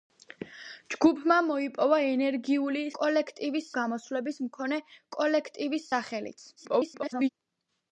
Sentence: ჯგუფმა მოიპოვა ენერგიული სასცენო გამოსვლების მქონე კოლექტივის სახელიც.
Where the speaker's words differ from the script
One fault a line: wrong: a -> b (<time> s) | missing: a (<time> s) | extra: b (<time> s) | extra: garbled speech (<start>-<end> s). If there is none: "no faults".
wrong: სასცენო -> კოლექტივის (3.0 s)
extra: garbled speech (6.6-7.3 s)